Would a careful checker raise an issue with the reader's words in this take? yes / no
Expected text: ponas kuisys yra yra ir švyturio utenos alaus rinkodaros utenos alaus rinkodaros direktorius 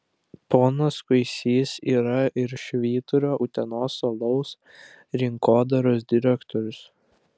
yes